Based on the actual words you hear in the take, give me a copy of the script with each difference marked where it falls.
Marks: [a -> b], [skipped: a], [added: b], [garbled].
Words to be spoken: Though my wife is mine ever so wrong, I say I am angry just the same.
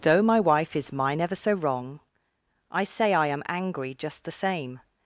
Though my wife is mine ever so wrong, I say I am angry just the same.